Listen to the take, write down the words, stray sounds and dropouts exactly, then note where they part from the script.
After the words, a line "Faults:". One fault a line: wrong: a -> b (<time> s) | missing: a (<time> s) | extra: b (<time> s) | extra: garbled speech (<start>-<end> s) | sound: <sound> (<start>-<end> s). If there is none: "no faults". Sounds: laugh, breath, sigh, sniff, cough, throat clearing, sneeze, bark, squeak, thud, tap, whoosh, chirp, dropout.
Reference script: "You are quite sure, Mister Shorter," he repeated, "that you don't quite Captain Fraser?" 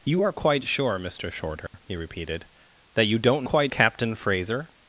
"You are quite sure, Mister Shorter," he repeated, "that you don't quite Captain Fraser?"
Faults:
sound: dropout (1.7-1.7 s)